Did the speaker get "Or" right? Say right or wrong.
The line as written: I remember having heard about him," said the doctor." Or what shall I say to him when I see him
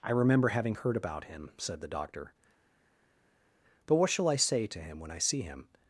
wrong